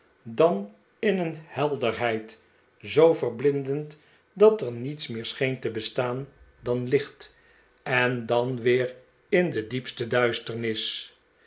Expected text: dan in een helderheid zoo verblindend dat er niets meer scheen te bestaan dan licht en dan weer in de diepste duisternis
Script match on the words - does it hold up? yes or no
yes